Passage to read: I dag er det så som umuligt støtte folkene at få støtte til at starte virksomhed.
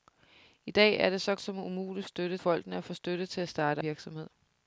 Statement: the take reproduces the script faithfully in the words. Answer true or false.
true